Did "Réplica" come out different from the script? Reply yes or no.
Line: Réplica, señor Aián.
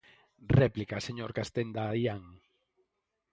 no